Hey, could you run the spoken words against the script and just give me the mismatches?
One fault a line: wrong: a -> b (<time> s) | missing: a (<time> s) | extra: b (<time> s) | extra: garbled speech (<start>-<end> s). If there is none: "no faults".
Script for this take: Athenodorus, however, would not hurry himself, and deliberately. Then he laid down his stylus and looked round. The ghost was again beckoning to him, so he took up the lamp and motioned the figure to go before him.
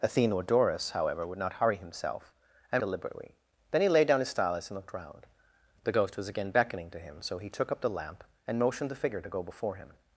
no faults